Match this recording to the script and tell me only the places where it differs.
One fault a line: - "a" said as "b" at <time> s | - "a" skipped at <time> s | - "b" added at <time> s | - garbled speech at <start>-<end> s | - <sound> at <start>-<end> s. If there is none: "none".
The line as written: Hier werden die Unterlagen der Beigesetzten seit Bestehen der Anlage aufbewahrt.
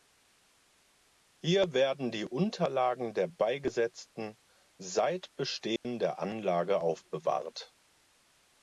- dropout at 5.8-5.8 s